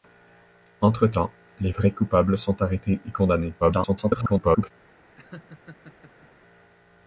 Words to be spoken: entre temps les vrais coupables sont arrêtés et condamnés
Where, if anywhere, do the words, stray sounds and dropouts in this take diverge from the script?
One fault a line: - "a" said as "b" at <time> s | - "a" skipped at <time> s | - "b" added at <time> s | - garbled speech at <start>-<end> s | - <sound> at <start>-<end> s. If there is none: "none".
- garbled speech at 3.6-4.7 s
- laugh at 5.2-6.3 s